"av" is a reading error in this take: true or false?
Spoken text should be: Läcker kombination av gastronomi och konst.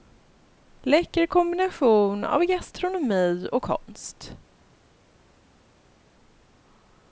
false